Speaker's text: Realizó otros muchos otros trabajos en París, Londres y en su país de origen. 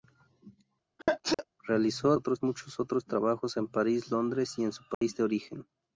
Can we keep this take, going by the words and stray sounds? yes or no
no